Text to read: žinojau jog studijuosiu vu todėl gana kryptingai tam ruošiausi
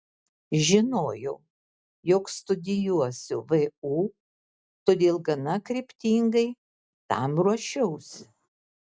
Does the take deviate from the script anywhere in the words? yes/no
no